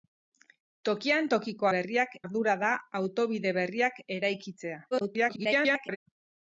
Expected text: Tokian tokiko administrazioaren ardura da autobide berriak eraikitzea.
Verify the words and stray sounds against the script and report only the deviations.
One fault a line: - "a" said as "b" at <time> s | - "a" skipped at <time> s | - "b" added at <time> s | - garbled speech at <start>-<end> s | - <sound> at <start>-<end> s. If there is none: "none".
- "administrazioaren" said as "berriak" at 1.8 s
- garbled speech at 4.9-6.0 s